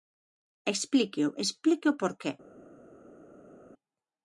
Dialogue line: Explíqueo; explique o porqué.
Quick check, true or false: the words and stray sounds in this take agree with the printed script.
true